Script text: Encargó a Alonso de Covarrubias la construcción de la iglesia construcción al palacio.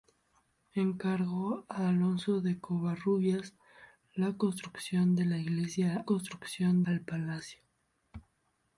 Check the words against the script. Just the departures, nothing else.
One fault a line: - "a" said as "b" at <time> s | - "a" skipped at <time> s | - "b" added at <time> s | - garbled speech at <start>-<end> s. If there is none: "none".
none